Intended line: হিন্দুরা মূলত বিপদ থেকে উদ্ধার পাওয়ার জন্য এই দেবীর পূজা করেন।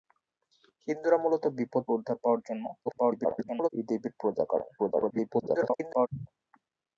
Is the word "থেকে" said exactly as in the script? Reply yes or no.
no